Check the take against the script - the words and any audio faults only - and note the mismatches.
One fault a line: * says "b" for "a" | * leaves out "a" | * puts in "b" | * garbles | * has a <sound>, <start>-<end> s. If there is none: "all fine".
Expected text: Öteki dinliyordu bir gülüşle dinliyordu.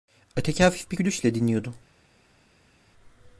* says "hafif" for "dinliyordu"